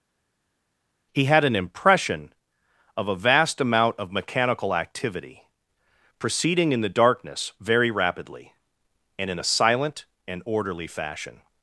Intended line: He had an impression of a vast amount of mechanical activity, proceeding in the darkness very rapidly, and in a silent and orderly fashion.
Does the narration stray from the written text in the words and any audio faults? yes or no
no